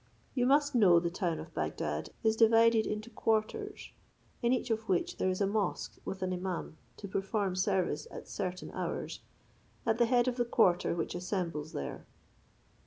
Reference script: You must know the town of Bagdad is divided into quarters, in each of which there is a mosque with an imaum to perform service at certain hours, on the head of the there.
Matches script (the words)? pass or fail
fail